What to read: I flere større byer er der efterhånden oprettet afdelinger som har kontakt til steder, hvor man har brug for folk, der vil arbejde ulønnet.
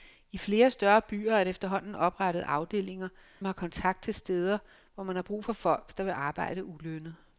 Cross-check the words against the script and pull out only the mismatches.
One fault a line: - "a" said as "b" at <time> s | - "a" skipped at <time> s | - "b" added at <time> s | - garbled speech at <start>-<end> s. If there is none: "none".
- "som" skipped at 3.1 s